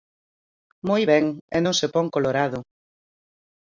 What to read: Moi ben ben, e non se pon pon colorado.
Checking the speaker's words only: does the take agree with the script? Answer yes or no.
no